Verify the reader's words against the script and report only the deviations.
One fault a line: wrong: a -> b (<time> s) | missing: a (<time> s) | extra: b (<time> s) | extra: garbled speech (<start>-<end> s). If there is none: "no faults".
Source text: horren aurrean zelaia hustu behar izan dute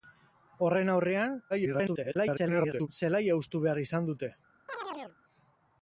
extra: garbled speech (1.5-2.9 s)